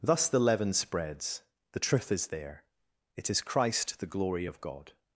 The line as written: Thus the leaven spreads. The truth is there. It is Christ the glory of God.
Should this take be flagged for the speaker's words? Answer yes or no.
no